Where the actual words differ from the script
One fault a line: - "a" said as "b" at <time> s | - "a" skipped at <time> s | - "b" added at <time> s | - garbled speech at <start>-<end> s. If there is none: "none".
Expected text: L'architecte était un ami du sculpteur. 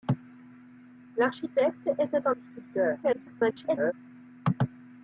- "ami" skipped at 2.4 s
- garbled speech at 3.0-3.9 s